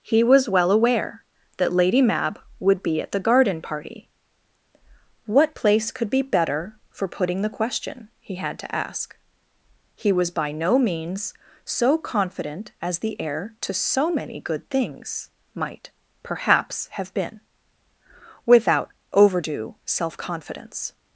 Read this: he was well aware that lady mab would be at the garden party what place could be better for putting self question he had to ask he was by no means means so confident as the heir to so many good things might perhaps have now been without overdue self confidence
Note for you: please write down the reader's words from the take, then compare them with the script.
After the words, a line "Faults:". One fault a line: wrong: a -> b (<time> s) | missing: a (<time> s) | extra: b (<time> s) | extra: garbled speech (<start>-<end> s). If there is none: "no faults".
he was well aware that lady mab would be at the garden party what place could be better for putting the question he had to ask he was by no means so confident as the heir to so many good things might perhaps have been without overdue self confidence
Faults:
wrong: self -> the (7.4 s)
missing: means (11.3 s)
missing: now (17.1 s)